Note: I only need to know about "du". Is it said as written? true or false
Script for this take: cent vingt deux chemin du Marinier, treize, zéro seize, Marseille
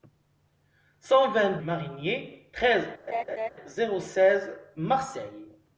false